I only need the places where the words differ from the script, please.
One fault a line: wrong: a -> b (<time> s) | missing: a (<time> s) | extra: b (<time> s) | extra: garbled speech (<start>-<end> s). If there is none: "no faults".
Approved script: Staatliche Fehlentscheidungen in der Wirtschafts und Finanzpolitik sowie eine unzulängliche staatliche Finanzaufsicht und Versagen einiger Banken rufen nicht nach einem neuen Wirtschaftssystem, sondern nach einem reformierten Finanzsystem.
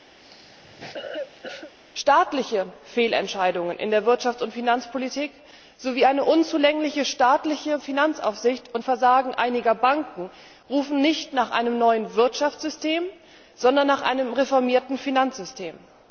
no faults